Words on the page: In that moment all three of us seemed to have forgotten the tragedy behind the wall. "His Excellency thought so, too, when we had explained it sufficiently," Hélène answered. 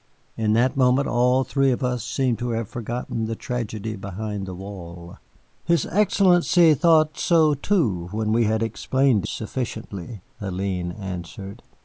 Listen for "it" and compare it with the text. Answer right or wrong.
wrong